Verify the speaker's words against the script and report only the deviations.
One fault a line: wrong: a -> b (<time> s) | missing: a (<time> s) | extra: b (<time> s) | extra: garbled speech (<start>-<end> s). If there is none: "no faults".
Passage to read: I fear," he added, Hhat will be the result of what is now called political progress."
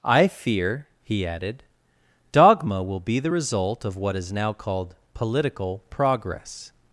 wrong: Hhat -> Dogma (2.3 s)